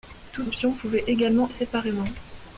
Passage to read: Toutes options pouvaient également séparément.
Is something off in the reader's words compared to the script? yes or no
no